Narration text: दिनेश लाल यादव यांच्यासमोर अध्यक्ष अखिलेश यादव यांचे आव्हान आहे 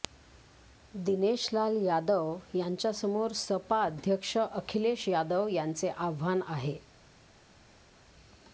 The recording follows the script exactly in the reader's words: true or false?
false